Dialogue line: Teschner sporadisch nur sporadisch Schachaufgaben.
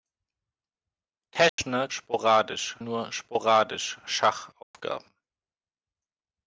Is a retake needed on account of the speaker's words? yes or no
no